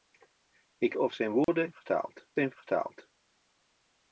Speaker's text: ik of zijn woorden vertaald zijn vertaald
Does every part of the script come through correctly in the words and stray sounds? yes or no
no